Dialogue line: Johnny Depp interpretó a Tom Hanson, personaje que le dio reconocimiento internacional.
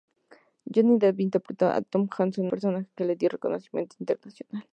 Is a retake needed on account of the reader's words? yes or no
no